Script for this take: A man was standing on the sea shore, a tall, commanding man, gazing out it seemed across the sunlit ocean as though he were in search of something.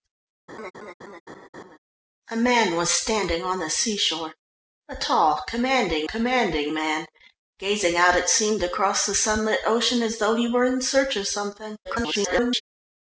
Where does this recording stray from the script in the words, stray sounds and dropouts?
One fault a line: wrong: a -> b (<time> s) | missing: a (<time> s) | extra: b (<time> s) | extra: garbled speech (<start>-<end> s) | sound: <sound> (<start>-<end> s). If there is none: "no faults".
sound: laugh (0.5-1.8 s)
extra: commanding (6.1 s)
extra: garbled speech (11.8-12.6 s)